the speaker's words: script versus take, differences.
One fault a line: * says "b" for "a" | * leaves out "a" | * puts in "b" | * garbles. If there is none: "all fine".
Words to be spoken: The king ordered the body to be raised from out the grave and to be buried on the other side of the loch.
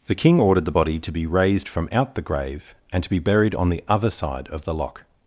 all fine